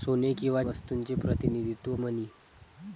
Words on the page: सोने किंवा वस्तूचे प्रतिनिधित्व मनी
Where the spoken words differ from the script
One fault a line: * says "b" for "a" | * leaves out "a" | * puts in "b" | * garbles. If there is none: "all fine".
all fine